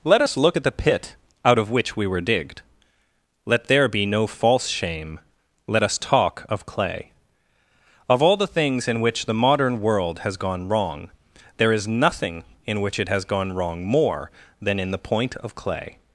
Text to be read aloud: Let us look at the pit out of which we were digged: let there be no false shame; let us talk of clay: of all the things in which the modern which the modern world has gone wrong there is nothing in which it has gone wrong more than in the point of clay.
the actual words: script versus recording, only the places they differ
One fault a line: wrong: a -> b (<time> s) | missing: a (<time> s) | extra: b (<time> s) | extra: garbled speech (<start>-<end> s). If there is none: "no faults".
missing: which the modern (9.8 s)